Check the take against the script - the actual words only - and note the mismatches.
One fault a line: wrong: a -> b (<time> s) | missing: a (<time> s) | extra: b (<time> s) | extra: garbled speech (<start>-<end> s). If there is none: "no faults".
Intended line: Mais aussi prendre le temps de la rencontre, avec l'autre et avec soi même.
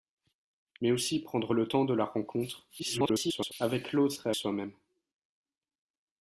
extra: garbled speech (2.8-3.5 s)
missing: avec (4.3 s)